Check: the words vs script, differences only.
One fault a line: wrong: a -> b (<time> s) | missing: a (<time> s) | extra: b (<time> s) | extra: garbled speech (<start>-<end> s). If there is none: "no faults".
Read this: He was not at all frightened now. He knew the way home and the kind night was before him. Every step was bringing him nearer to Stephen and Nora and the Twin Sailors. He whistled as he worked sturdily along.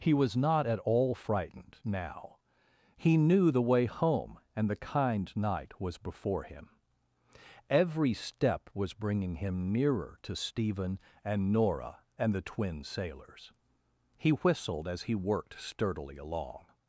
no faults